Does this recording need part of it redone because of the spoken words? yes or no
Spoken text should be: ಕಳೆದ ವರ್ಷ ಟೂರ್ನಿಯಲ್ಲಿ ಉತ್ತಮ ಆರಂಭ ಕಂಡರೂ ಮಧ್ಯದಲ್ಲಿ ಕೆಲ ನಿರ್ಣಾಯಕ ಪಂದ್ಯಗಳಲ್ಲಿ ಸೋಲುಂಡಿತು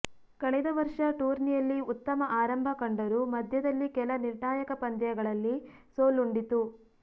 no